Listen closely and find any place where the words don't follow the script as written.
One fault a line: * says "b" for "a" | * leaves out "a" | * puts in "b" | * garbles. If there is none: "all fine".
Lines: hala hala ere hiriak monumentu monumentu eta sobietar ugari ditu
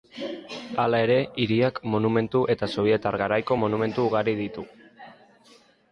* leaves out "hala"
* leaves out "monumentu"
* puts in "garaiko monumentu"